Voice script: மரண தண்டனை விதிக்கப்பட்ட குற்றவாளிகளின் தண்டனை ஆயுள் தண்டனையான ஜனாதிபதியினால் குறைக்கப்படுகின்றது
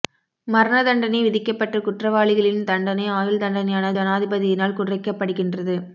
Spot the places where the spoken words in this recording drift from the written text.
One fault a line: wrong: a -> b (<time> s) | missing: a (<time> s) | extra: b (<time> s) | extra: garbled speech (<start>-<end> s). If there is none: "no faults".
no faults